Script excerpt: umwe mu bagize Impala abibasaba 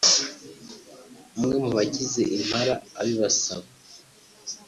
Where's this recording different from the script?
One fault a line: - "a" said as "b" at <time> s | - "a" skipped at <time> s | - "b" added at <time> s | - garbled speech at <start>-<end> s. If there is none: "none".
none